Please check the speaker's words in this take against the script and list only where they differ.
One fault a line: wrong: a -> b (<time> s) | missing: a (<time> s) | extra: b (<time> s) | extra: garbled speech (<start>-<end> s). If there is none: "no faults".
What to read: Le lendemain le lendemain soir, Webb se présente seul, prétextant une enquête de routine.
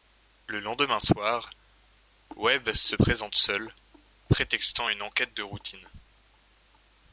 missing: le lendemain (1.0 s)